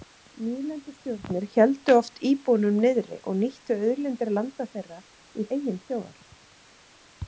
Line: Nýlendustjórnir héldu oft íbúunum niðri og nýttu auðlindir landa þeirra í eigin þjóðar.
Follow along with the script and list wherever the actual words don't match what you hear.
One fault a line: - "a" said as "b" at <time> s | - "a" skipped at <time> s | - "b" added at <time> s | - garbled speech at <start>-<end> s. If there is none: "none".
none